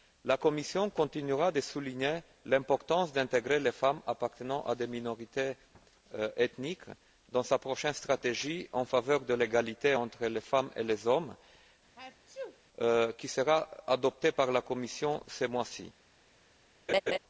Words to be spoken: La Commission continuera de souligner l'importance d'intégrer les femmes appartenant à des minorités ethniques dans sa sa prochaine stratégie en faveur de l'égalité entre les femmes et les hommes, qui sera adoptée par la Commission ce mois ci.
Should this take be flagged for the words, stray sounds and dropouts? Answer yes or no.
yes